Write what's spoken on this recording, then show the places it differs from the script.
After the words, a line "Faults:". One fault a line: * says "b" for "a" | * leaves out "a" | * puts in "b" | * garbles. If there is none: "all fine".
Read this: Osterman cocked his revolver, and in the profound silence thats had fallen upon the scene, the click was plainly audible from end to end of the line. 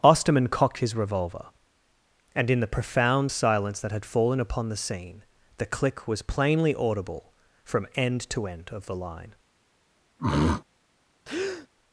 Osterman cocked his revolver, and in the profound silence that had fallen upon the scene, the click was plainly audible from end to end of the line.
Faults:
* says "that" for "thats"